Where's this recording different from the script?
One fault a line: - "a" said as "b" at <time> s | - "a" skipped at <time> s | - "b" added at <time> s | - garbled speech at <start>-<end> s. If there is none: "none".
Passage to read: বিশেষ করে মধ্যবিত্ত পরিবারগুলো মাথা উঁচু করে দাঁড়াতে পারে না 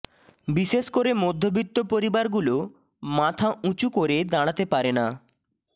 none